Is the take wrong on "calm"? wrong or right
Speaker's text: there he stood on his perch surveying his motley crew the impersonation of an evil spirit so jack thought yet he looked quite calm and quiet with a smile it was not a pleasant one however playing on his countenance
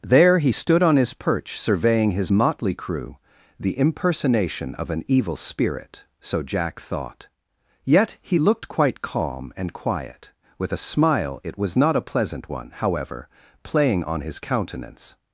right